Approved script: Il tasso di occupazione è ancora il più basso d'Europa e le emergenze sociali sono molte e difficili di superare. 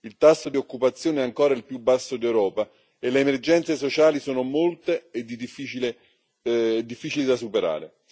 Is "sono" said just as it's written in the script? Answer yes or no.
yes